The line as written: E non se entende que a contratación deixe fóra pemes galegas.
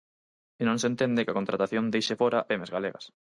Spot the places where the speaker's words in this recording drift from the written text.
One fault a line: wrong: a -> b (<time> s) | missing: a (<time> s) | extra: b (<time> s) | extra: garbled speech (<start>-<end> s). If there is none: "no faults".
no faults